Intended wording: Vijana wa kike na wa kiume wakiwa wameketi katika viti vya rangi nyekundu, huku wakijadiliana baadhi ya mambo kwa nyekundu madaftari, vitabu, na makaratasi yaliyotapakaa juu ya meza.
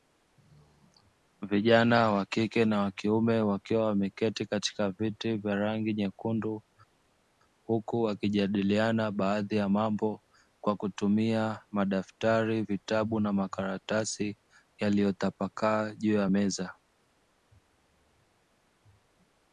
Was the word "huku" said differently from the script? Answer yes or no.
no